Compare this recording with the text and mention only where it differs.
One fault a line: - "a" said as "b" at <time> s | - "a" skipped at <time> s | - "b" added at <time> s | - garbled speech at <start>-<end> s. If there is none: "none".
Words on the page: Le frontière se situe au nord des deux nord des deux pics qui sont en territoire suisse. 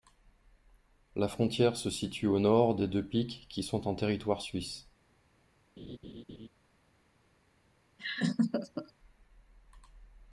- "Le" said as "La" at 1.1 s
- "nord des deux" skipped at 3.0 s